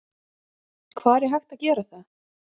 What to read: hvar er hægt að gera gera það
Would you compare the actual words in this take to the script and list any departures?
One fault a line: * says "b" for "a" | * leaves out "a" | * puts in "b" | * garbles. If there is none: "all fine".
* leaves out "gera"